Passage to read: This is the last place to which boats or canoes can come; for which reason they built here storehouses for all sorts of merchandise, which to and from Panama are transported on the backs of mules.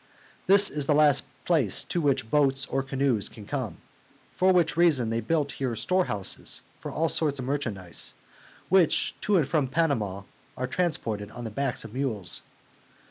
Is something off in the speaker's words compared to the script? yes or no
no